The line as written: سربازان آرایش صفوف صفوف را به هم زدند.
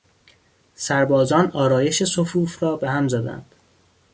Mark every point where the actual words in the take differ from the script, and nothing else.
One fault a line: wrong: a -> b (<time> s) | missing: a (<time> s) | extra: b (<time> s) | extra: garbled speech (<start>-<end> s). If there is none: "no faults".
missing: صفوف (2.6 s)